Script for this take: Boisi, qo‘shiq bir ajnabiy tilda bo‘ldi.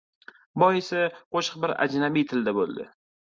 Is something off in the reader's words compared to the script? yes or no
no